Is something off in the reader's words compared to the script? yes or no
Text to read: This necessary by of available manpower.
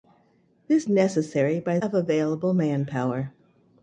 no